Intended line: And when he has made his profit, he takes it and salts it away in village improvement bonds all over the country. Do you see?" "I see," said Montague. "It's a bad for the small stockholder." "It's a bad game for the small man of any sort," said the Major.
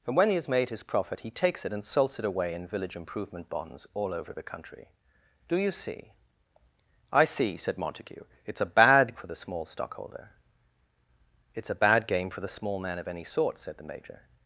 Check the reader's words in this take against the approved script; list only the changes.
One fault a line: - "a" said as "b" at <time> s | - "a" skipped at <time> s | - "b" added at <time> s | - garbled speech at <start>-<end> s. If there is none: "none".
none